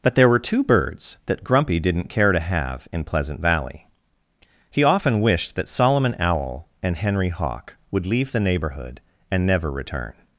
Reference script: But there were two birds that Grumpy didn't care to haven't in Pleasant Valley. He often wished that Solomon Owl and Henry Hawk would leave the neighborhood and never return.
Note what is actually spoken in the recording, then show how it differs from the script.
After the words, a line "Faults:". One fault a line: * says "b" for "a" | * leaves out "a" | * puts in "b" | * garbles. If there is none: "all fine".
But there were two birds that Grumpy didn't care to have in Pleasant Valley. He often wished that Solomon Owl and Henry Hawk would leave the neighborhood and never return.
Faults:
* says "have" for "haven't"